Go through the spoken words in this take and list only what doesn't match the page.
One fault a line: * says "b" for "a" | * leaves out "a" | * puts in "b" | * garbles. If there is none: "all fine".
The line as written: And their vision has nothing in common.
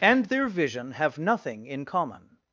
* says "have" for "has"